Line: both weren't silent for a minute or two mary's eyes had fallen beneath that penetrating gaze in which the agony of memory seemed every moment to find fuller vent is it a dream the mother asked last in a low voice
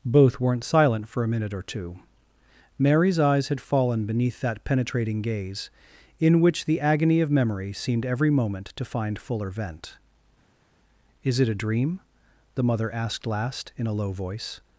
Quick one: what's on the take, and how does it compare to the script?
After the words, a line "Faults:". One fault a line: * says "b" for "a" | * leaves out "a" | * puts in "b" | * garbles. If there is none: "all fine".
both weren't silent for a minute or two mary's eyes had fallen beneath that penetrating gaze in which the agony of memory seemed every moment to find fuller vent is it a dream the mother asked last in a low voice
Faults:
all fine